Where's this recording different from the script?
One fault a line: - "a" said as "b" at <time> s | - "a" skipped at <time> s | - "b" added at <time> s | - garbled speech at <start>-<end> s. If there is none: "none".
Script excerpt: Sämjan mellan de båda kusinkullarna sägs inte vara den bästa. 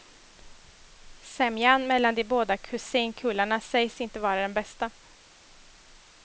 none